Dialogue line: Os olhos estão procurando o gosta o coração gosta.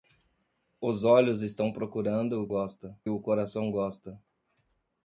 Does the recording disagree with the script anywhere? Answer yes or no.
no